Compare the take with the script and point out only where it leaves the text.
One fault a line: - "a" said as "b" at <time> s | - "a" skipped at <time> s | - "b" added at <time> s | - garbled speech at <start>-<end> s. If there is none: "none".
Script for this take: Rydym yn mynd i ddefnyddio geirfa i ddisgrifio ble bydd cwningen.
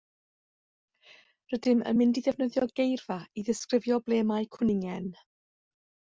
- "bydd" said as "mae" at 4.4 s